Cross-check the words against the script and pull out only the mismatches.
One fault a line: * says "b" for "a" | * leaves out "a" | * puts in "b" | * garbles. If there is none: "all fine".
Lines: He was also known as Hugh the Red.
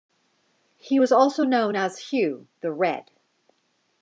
all fine